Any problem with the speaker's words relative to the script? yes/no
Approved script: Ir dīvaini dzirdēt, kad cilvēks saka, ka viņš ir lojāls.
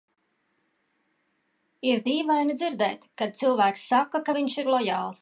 no